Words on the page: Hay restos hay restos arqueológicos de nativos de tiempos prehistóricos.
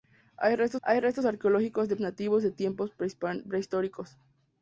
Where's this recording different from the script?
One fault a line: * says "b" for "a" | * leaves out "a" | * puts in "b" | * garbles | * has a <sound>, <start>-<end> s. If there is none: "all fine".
all fine